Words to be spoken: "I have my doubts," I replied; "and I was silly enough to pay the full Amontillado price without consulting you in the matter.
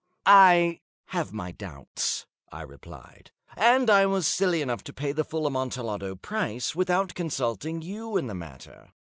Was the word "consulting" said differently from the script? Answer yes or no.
no